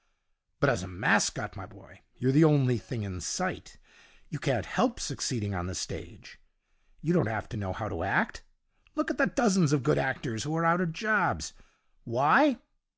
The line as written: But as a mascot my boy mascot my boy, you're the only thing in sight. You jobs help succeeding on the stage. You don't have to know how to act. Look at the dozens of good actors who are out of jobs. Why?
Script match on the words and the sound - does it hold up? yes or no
no